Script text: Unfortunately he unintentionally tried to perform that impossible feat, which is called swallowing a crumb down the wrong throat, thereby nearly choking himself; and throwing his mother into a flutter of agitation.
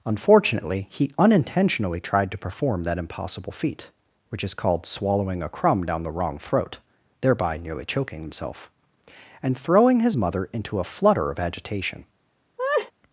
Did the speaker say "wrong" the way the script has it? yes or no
yes